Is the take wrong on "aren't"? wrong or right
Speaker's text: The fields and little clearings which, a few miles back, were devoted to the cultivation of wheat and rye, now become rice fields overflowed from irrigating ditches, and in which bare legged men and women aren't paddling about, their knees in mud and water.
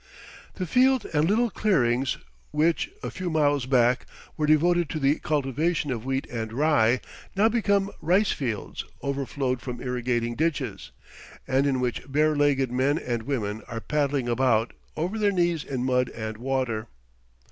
wrong